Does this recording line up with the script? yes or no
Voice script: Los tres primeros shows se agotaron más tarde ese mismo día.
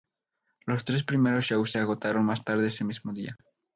yes